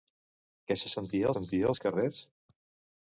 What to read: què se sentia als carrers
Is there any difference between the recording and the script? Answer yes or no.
yes